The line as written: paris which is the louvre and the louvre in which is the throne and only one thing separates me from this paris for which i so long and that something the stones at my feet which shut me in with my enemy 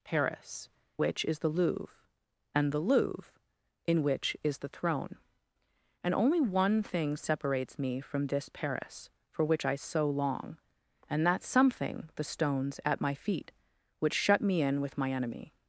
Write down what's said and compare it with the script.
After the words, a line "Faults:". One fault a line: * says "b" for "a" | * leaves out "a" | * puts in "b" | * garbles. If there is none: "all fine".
paris which is the louvre and the louvre in which is the throne and only one thing separates me from this paris for which i so long and that something the stones at my feet which shut me in with my enemy
Faults:
all fine